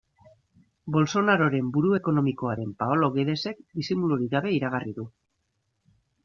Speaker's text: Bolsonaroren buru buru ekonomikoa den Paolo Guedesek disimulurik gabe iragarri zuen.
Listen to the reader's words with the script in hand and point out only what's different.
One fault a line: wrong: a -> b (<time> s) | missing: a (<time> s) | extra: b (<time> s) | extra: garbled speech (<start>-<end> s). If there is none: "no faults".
missing: buru (1.9 s)
wrong: zuen -> du (5.0 s)